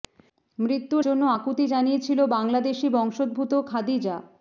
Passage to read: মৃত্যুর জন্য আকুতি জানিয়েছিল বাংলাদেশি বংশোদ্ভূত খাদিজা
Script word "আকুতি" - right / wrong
right